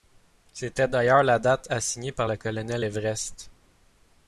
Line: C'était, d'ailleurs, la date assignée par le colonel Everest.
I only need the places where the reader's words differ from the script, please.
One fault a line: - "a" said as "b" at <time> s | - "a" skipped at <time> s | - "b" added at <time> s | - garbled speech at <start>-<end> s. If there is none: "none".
none